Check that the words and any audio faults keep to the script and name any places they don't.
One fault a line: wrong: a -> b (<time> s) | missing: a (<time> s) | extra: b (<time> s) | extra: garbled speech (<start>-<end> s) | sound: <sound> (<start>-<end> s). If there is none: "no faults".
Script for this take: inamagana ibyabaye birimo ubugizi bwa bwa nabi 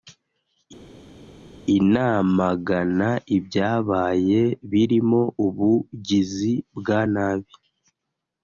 missing: bwa (7.0 s)